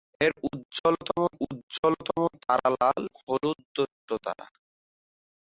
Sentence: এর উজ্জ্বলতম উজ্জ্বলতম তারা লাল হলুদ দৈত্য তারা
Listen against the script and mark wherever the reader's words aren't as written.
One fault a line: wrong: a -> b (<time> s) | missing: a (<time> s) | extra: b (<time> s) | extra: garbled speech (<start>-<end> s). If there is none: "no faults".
no faults